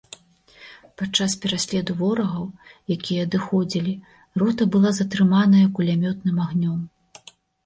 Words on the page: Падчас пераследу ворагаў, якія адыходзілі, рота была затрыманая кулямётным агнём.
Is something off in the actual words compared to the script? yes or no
no